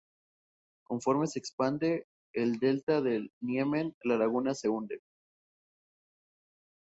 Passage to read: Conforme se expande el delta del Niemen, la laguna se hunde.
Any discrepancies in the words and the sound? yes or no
no